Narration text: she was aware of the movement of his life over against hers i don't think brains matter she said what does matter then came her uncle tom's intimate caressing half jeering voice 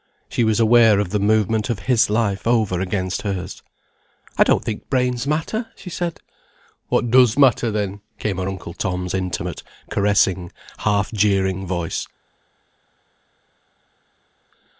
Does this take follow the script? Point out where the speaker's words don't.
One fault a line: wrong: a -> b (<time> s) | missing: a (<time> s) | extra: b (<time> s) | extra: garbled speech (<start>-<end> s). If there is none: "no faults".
no faults